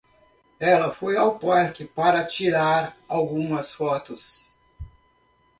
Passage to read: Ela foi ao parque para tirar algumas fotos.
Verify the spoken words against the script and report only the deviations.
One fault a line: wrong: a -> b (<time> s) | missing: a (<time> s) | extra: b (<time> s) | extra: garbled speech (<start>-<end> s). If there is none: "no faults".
no faults